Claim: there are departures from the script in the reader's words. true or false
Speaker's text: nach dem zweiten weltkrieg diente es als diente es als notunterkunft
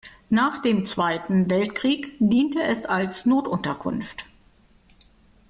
true